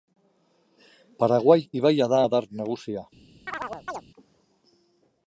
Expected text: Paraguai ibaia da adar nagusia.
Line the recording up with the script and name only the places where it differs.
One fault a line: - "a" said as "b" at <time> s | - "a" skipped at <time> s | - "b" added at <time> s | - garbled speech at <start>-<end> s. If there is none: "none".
none